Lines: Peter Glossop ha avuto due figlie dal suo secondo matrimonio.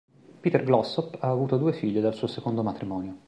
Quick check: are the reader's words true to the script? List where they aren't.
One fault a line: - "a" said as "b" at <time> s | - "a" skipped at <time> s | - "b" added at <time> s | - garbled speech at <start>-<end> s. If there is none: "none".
none